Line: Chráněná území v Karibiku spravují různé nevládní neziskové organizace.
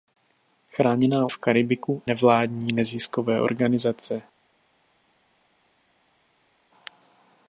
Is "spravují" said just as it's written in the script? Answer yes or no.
no